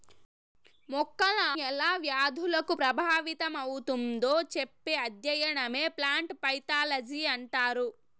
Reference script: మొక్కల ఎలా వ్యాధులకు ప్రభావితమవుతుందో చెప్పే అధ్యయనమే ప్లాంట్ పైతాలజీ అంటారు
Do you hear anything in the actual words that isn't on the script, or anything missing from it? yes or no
no